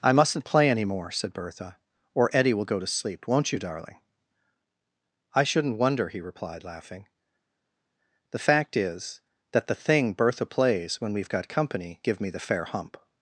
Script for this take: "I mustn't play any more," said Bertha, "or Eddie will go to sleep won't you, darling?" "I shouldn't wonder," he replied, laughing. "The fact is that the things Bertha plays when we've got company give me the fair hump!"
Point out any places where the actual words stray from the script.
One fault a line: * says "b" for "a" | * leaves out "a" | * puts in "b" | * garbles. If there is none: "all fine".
* says "thing" for "things"